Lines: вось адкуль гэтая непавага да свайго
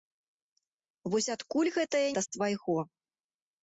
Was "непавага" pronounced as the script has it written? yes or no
no